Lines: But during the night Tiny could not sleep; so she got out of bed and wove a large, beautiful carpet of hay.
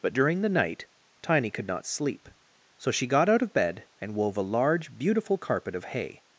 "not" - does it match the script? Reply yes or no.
yes